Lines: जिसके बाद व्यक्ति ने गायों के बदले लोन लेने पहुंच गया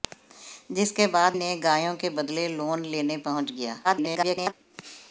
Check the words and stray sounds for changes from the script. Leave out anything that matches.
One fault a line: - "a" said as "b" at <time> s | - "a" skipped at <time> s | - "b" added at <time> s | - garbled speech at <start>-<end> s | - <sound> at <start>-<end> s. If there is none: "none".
- "व्यक्ति" skipped at 1.4 s
- garbled speech at 3.8-4.5 s